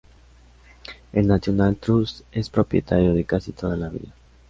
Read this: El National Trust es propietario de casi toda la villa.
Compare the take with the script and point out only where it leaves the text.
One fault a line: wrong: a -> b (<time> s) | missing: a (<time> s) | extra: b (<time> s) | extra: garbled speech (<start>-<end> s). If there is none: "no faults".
no faults